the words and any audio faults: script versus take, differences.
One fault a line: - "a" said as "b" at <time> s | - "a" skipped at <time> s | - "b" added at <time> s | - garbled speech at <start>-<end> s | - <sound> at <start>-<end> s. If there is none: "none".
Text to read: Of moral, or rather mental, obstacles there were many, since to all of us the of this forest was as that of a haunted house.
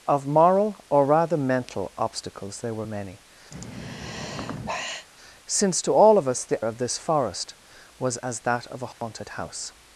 - sigh at 3.5-5.1 s
- dropout at 8.9-9.0 s